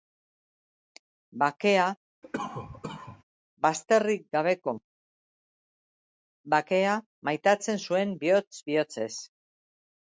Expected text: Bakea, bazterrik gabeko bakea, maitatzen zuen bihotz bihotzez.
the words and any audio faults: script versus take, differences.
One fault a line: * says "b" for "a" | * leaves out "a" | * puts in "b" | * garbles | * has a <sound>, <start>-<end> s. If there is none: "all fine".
* has a cough, 2.2-3.2 s